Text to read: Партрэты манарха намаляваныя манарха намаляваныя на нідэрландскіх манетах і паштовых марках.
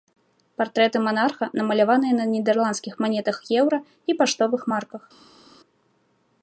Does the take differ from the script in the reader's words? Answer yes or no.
yes